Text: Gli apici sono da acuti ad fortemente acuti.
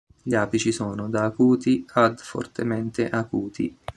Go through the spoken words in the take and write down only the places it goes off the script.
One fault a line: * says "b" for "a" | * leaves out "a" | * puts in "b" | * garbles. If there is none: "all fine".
all fine